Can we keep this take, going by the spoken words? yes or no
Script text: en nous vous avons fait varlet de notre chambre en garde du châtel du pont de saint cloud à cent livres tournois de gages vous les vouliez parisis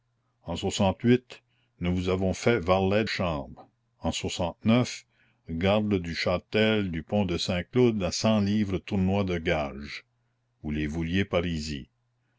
no